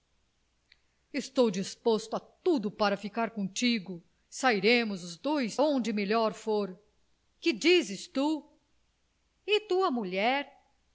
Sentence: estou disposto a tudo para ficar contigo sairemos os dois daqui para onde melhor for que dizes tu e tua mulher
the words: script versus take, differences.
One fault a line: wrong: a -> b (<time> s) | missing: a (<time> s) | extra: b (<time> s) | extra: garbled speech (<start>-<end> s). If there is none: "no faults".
missing: daqui para (5.6 s)